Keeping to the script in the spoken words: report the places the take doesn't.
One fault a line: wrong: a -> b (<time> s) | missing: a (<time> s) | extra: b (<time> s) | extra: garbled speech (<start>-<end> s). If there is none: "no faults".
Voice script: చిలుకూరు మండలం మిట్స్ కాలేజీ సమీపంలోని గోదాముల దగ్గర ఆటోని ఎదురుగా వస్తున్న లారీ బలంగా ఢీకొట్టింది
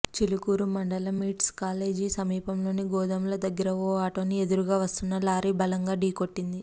extra: ఓ (3.8 s)